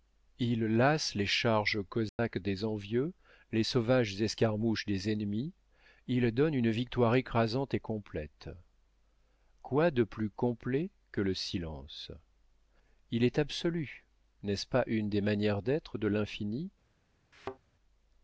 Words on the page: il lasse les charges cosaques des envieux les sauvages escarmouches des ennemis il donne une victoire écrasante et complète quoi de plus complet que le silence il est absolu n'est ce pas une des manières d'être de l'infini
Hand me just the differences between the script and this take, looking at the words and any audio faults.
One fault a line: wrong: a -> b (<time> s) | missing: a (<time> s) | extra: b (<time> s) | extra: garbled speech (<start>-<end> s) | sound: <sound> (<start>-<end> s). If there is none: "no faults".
sound: dropout (2.1-2.2 s)
sound: thud (17.3-17.6 s)